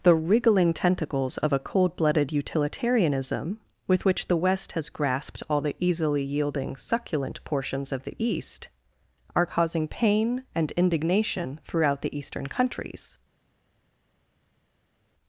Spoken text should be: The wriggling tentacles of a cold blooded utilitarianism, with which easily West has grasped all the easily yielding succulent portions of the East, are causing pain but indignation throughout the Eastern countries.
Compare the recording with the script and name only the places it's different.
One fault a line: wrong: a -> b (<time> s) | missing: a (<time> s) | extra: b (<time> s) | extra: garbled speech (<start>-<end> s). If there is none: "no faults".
wrong: easily -> the (4.3 s)
wrong: but -> and (10.6 s)